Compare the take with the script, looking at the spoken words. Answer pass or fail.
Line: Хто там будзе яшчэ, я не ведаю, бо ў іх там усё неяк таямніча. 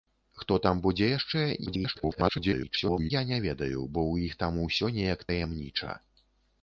fail